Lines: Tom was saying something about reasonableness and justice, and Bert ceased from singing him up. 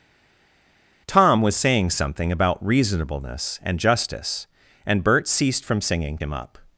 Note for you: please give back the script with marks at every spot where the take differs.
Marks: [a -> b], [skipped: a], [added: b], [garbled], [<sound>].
Tom was saying something about reasonableness and justice, and Bert ceased from singing him up.